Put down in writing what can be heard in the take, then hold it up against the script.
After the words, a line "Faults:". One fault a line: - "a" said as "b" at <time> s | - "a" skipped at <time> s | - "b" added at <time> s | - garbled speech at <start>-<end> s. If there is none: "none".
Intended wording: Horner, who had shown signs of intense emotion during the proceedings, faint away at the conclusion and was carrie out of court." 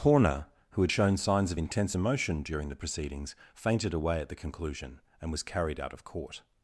Horner, who had shown signs of intense emotion during the proceedings, fainted away at the conclusion and was carried out of court."
Faults:
- "faint" said as "fainted" at 3.5 s
- "carrie" said as "carried" at 5.4 s